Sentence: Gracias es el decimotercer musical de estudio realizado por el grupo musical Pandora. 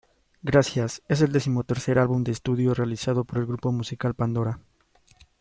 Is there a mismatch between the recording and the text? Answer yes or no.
yes